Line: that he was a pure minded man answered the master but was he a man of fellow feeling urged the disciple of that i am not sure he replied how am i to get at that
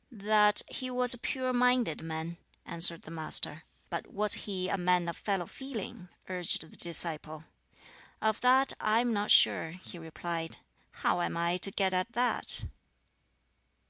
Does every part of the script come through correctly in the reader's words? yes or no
yes